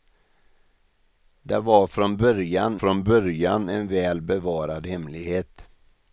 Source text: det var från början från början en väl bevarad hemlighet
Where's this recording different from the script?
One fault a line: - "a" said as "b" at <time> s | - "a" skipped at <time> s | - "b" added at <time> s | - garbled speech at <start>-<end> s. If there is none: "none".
none